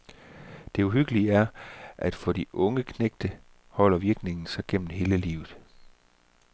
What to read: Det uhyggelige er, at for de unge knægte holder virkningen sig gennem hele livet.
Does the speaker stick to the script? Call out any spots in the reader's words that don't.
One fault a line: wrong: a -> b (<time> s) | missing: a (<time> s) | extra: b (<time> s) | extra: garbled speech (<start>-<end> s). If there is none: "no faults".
no faults